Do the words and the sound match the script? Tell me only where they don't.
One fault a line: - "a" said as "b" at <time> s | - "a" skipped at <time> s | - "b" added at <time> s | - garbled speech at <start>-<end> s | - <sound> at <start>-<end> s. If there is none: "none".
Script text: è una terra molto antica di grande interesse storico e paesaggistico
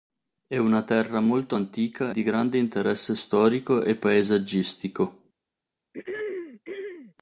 - throat clearing at 5.9-7.1 s